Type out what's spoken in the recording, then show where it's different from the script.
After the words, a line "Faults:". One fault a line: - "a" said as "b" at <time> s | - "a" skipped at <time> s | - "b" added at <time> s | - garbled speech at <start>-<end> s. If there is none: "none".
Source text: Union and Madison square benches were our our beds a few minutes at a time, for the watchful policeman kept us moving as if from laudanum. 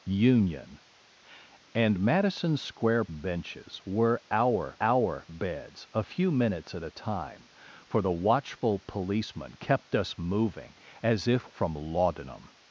Union and Madison square benches were our our beds a few minutes at a time, for the watchful policeman kept us moving as if from laudanum.
Faults:
none